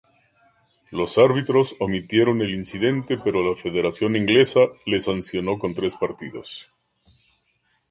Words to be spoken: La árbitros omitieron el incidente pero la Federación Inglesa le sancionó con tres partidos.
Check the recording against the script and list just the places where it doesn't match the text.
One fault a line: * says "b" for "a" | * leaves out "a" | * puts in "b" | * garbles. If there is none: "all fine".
* says "Los" for "La"